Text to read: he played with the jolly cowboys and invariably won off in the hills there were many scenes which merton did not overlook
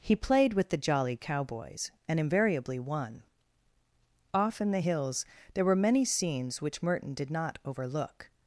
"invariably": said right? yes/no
yes